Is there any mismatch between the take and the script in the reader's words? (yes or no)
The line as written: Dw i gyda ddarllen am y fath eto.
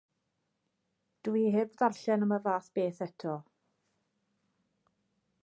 yes